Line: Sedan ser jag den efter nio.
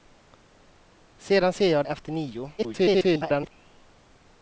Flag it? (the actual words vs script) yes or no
yes